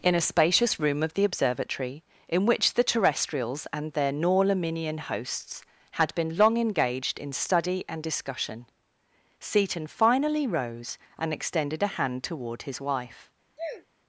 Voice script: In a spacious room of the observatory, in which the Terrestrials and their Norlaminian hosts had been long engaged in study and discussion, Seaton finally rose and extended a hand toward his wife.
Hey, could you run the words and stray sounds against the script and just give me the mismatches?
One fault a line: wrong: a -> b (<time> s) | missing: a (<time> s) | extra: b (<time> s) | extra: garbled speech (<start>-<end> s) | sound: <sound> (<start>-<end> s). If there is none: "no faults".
sound: sneeze (13.6-13.9 s)